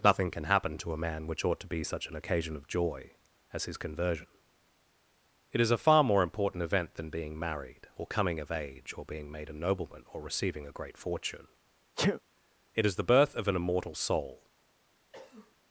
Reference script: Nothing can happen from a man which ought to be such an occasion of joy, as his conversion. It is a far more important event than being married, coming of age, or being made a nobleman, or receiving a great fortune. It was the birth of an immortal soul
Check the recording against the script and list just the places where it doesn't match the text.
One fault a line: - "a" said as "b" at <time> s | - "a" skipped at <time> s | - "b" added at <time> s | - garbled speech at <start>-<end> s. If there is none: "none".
- "from" said as "to" at 0.8 s
- "or" added at 8.0 s
- "was" said as "is" at 12.8 s